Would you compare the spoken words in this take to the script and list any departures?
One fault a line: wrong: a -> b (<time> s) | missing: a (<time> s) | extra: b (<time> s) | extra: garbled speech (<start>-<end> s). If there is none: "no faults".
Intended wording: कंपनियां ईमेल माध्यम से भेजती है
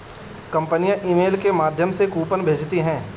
extra: के (1.4 s)
extra: कूपन (2.1 s)